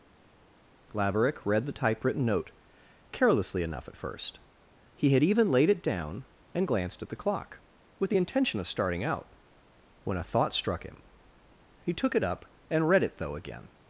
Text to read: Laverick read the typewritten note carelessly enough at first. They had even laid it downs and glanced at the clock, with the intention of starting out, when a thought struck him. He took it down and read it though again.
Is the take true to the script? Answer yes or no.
no